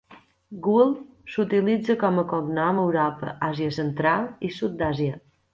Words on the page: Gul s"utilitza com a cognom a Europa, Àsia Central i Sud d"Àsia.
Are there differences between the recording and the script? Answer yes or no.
no